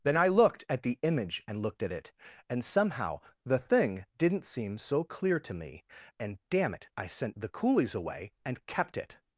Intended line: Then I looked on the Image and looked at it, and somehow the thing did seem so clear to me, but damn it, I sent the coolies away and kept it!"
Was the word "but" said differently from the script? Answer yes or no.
yes